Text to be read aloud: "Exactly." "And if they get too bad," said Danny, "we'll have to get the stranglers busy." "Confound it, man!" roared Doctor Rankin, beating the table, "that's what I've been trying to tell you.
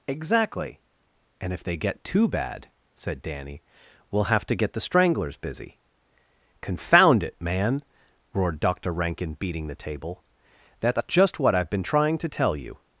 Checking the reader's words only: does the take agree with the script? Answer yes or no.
no